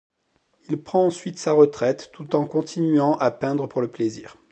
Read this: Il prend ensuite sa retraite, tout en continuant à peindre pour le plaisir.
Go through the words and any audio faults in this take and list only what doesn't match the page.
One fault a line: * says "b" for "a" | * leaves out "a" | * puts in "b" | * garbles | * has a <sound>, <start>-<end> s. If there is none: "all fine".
all fine